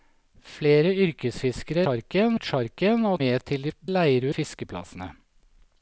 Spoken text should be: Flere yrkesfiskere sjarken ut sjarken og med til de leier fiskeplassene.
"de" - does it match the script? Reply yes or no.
yes